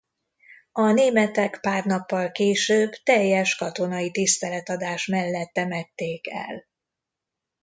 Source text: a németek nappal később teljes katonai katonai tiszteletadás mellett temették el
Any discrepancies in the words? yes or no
yes